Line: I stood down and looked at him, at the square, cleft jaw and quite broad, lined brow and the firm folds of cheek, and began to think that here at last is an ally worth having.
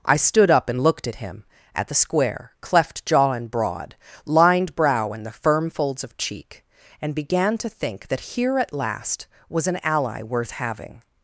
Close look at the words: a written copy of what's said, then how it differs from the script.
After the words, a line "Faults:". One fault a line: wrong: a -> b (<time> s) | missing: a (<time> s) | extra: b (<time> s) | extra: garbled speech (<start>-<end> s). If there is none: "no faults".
I stood up and looked at him, at the square, cleft jaw and broad, lined brow and the firm folds of cheek, and began to think that here at last was an ally worth having.
Faults:
wrong: down -> up (0.5 s)
missing: quite (3.5 s)
wrong: is -> was (9.5 s)